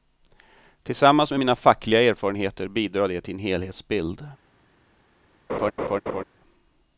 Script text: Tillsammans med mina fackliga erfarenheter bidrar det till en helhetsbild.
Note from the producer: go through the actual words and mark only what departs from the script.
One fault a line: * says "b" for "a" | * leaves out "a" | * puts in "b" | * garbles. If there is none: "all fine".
all fine